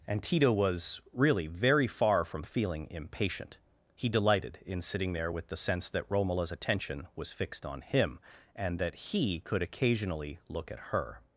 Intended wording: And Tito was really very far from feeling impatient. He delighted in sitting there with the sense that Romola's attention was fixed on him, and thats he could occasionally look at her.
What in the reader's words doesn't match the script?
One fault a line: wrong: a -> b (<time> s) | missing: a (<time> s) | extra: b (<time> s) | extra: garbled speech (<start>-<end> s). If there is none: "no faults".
wrong: thats -> that (8.8 s)